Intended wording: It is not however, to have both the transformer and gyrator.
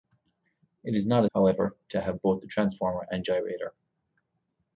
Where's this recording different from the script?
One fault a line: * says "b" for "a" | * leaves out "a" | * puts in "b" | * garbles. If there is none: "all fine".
all fine